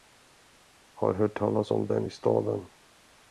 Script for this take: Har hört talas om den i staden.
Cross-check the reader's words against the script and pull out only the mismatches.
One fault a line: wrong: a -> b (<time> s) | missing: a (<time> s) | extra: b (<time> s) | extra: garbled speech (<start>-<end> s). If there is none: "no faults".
no faults